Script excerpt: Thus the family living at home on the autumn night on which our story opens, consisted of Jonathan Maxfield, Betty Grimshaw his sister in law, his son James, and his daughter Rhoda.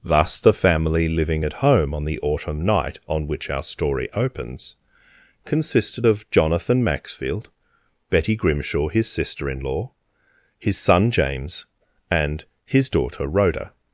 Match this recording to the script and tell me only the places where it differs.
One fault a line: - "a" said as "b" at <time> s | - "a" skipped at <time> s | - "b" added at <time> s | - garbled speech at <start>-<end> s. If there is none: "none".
none